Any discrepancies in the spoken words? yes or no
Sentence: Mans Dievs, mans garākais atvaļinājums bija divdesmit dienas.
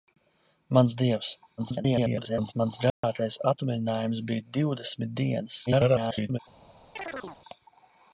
yes